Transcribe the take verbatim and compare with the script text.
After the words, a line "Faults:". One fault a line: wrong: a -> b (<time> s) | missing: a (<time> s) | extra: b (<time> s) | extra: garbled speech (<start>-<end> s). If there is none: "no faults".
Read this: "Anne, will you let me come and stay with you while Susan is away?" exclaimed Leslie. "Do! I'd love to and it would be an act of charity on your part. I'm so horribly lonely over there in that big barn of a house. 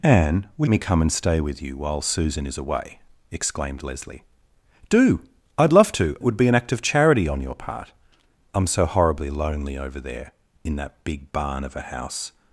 "Anne, will me come and stay with you while Susan is away?" exclaimed Leslie. "Do! I'd love to it would be an act of charity on your part. I'm so horribly lonely over there in that big barn of a house.
Faults:
missing: you let (0.7 s)
missing: and (6.2 s)